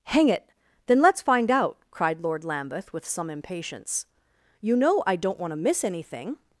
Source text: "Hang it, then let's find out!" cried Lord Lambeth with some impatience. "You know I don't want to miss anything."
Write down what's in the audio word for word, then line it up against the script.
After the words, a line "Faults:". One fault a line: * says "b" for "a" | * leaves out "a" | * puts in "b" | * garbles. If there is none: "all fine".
"Hang it, then let's find out!" cried Lord Lambeth with some impatience. "You know I don't want to miss anything."
Faults:
all fine